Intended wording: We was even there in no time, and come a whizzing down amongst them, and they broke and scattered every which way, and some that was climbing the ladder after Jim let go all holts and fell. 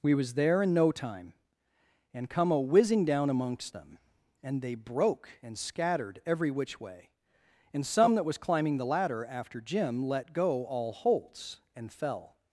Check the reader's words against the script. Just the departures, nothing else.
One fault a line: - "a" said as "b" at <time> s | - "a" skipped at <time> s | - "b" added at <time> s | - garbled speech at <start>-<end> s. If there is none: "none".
- "even" skipped at 0.3 s